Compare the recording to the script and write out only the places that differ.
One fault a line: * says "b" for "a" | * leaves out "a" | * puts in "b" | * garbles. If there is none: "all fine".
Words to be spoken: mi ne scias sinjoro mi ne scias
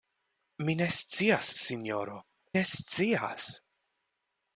* leaves out "mi"